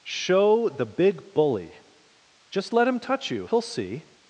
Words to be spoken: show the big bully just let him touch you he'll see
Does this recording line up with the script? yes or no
yes